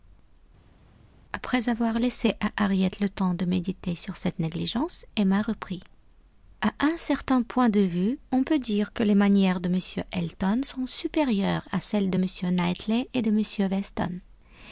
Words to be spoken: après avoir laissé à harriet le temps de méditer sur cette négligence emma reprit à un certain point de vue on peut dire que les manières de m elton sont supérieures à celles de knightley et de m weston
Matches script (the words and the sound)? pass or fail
fail